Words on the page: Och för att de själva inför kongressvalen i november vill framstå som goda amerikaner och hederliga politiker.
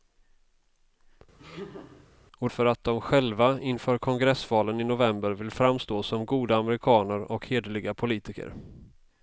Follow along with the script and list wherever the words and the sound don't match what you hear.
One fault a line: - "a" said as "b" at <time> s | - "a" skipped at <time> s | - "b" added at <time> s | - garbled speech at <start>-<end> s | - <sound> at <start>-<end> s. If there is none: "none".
- laugh at 1.4-2.1 s